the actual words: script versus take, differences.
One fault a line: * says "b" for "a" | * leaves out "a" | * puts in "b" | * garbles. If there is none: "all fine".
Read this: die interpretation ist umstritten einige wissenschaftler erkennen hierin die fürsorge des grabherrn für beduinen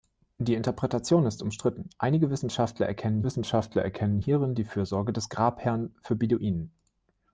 * puts in "wissenschaftler erkennen"